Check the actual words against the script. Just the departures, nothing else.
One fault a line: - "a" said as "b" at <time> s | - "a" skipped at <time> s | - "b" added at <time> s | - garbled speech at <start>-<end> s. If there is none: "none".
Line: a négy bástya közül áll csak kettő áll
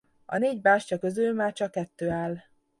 - "áll" said as "már" at 1.3 s